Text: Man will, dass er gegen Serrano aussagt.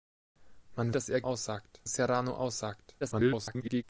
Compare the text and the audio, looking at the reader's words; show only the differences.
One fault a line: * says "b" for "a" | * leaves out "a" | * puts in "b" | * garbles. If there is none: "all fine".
* leaves out "will"
* says "aussagt" for "gegen"
* garbles